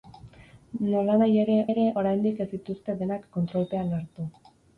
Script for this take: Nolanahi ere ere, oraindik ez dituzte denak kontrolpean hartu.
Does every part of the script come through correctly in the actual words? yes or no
yes